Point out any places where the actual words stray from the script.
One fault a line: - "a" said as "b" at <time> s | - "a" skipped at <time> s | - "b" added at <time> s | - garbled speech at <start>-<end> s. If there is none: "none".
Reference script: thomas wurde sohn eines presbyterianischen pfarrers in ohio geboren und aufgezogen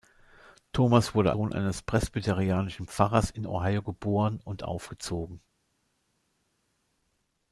none